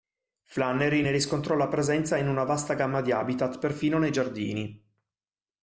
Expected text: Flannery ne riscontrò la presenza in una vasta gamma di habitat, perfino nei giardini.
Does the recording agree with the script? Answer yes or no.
yes